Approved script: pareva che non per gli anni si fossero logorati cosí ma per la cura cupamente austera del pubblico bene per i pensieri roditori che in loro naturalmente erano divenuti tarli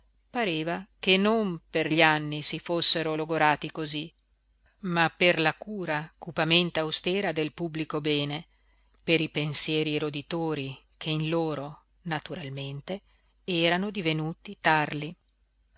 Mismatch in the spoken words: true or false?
false